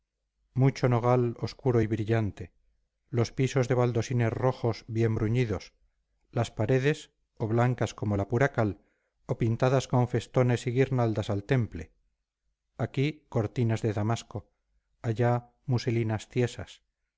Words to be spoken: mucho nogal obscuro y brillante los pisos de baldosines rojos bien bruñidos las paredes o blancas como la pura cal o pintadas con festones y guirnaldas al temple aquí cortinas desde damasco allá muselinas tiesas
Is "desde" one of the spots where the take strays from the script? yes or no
yes